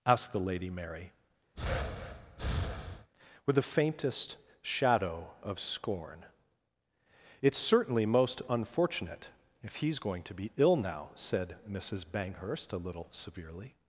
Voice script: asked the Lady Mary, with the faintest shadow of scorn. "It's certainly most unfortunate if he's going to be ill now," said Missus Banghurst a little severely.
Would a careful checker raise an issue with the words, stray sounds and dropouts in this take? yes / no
yes